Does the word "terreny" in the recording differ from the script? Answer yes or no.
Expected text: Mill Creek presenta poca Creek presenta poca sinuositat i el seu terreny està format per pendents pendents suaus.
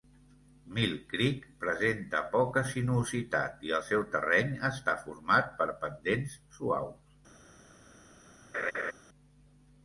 no